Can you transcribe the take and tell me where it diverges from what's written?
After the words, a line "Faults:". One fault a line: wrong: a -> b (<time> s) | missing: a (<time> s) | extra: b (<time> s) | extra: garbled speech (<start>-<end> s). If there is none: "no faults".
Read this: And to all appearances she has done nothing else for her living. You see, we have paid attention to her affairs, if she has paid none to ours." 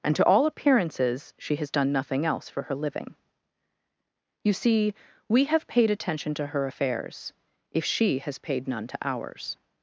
And to all appearances she has done nothing else for her living. You see, we have paid attention to her affairs, if she has paid none to ours."
Faults:
no faults